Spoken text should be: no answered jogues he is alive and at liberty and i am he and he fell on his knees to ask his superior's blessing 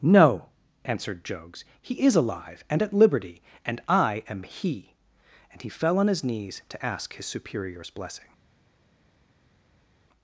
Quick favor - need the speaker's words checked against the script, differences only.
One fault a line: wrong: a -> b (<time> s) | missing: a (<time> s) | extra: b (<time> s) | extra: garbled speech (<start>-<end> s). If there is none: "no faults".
no faults